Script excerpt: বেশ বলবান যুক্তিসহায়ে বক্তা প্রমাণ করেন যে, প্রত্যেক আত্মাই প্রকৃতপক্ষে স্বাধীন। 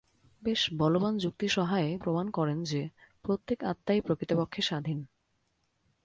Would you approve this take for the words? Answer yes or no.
no